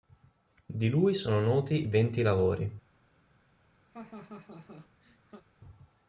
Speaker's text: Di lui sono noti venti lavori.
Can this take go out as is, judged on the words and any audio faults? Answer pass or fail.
fail